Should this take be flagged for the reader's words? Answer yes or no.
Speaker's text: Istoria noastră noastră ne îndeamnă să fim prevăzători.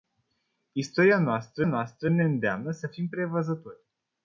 no